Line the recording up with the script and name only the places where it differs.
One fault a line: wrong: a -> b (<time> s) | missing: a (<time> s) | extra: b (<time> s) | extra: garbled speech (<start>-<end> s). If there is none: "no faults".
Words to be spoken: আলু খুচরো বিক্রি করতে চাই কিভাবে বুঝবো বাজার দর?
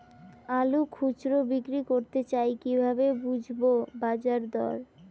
no faults